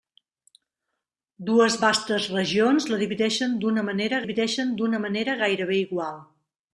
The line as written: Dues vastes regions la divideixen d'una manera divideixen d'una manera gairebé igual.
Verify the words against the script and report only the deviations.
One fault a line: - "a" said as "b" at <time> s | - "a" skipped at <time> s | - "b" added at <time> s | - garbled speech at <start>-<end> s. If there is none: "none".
none